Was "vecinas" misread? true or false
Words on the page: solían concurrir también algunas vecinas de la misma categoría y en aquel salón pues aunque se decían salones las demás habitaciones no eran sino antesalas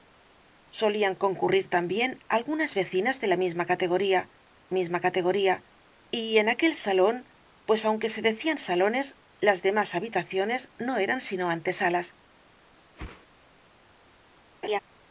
false